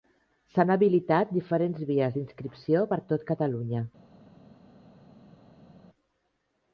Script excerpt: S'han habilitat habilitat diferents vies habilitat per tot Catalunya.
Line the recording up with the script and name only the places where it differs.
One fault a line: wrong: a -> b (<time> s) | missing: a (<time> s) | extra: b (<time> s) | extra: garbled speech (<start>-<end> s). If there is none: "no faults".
missing: habilitat (1.3 s)
wrong: habilitat -> d'inscripció (2.2 s)